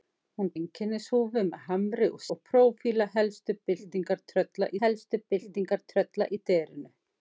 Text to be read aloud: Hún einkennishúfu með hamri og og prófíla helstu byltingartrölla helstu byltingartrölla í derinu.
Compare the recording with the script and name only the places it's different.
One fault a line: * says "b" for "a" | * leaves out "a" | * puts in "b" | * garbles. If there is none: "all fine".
all fine